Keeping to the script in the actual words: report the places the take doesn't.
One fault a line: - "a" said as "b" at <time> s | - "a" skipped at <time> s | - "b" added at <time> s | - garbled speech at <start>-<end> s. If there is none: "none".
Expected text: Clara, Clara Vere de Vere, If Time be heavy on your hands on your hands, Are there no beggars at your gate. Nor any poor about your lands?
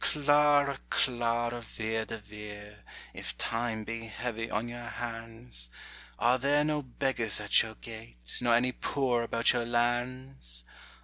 - "on your hands" skipped at 5.7 s